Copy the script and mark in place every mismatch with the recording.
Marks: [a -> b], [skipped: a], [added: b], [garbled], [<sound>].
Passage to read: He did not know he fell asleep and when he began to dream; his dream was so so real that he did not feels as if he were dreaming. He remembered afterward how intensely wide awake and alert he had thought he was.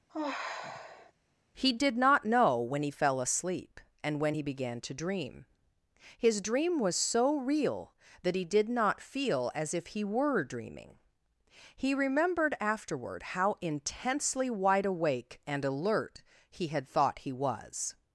[sigh] He did not know [added: when] he fell asleep and when he began to dream; his dream was so [skipped: so] real that he did not [feels -> feel] as if he were dreaming. He remembered afterward how intensely wide awake and alert he had thought he was.